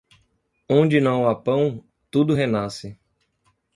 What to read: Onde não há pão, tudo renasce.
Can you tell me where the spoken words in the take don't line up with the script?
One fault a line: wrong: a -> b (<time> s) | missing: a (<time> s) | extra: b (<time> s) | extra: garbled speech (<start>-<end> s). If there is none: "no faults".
no faults